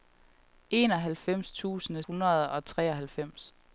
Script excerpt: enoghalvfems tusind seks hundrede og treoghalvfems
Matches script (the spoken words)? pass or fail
fail